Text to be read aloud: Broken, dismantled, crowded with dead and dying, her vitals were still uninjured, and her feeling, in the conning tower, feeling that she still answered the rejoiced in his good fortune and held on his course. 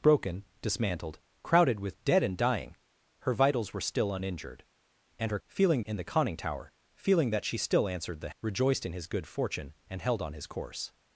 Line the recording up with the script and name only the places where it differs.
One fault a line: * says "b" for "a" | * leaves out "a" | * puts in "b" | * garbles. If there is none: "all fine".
all fine